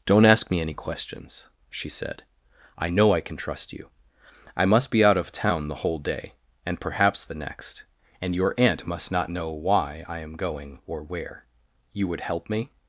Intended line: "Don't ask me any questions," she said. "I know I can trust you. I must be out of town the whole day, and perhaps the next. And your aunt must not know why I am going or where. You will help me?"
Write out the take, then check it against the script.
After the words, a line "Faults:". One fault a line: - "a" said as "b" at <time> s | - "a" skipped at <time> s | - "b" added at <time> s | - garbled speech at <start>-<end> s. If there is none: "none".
"Don't ask me any questions," she said. "I know I can trust you. I must be out of town the whole day, and perhaps the next. And your aunt must not know why I am going or where. You would help me?"
Faults:
- "will" said as "would" at 12.1 s